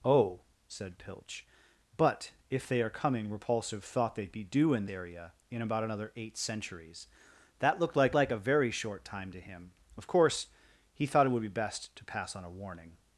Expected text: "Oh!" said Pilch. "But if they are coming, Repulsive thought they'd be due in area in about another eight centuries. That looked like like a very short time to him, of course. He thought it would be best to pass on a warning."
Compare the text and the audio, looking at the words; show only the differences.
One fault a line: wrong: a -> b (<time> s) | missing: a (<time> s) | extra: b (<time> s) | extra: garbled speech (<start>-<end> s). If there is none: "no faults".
no faults